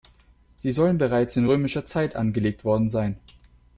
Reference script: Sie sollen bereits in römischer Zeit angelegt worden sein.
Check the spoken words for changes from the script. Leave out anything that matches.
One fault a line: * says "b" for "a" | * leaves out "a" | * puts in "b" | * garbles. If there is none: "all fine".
all fine